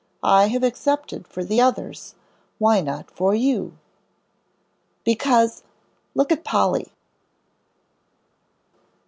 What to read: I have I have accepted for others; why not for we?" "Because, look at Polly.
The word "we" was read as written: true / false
false